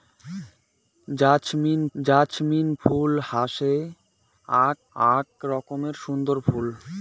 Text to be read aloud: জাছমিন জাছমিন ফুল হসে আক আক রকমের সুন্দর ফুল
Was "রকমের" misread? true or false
false